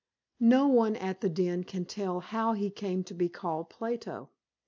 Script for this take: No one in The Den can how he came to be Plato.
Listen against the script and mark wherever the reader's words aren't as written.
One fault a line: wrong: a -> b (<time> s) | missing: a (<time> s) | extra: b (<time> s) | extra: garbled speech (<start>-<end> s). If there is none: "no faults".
wrong: in -> at (0.9 s)
extra: tell (1.9 s)
extra: called (3.3 s)